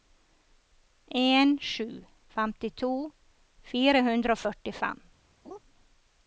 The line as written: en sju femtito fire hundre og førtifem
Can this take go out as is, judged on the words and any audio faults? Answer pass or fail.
fail